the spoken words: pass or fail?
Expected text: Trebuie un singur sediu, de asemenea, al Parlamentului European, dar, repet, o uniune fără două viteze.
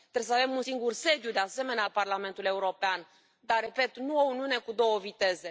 fail